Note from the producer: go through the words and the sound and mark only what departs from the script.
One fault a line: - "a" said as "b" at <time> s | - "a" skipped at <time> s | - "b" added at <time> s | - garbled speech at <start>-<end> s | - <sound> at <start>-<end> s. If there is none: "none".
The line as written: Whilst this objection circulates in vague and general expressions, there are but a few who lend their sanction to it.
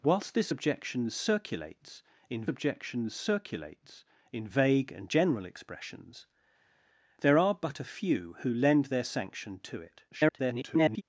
- "objection circulates in" added at 2.5 s
- garbled speech at 10.1-11.0 s